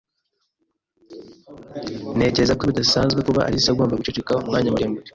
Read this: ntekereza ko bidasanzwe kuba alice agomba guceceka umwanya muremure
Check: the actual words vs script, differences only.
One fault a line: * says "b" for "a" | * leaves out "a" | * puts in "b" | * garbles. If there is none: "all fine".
all fine